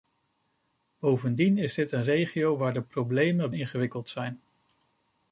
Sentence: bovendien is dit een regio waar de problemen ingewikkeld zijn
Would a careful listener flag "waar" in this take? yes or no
no